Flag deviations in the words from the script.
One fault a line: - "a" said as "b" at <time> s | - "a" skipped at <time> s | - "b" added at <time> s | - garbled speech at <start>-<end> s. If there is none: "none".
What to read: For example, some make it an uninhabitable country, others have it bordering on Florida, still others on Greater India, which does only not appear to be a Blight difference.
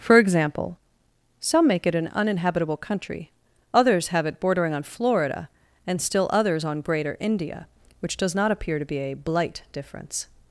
- "and" added at 5.8 s
- "only" skipped at 8.3 s